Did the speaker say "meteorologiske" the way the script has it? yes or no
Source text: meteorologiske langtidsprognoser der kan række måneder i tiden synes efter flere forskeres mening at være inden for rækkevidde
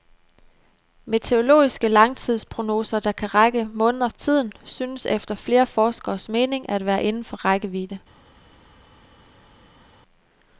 yes